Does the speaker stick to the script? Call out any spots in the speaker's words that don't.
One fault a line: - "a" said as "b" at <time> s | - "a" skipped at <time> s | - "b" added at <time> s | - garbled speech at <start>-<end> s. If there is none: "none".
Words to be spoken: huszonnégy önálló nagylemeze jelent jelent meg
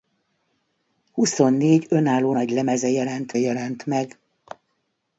none